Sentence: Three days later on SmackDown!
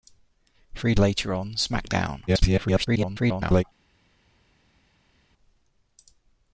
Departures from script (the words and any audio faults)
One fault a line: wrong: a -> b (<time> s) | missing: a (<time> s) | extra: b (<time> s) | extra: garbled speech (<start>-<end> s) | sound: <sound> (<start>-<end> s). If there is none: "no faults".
missing: days (0.9 s)
extra: garbled speech (2.3-3.6 s)